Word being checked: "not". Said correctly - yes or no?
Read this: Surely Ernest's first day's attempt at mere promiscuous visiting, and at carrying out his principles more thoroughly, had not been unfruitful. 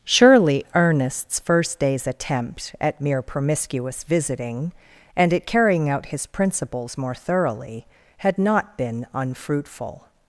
yes